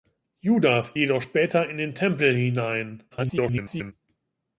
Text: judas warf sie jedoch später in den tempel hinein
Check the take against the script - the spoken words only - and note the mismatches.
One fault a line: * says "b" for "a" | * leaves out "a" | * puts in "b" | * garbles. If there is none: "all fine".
* leaves out "warf sie"
* garbles